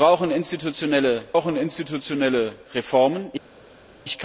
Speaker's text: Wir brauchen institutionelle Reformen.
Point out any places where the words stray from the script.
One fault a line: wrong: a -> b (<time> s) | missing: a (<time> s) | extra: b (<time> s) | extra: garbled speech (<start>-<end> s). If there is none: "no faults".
extra: brauchen institutionelle (1.3 s)